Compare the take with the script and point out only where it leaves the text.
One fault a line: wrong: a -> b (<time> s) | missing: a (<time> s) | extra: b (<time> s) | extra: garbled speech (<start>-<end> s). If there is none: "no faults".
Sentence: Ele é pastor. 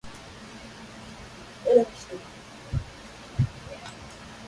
no faults